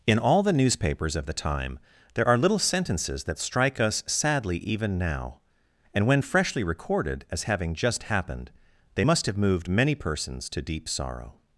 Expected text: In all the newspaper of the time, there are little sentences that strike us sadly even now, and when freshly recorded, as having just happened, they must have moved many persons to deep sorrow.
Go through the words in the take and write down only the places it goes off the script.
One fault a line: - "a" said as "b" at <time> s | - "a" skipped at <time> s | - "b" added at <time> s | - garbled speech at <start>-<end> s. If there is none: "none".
- "newspaper" said as "newspapers" at 0.5 s